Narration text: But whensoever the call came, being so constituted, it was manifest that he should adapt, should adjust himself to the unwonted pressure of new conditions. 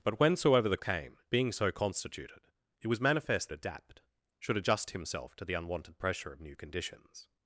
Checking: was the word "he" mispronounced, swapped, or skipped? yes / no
yes